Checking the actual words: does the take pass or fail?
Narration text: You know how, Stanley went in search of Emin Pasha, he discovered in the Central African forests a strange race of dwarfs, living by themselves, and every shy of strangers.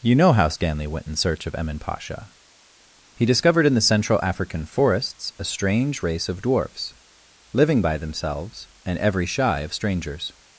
pass